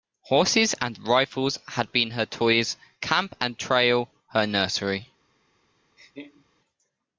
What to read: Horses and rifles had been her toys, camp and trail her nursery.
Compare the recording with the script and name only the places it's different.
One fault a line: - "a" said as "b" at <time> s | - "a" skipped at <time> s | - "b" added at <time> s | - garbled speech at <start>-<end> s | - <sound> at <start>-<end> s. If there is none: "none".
- laugh at 6.0-6.5 s